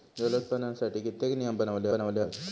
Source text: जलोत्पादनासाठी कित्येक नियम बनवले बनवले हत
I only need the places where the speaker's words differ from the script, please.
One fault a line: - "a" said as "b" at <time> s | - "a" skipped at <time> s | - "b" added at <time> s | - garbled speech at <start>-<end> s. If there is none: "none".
none